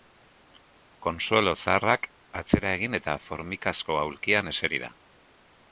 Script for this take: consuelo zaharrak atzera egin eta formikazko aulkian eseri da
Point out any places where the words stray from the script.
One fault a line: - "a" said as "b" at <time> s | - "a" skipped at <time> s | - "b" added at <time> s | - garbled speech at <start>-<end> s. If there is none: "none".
none